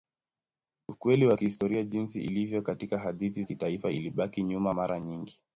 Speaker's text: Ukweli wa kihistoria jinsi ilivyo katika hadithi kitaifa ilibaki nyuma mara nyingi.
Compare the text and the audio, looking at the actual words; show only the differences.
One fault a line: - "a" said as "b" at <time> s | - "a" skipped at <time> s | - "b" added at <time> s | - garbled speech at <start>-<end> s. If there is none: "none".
none